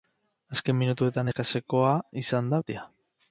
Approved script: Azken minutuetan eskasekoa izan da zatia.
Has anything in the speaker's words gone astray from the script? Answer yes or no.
no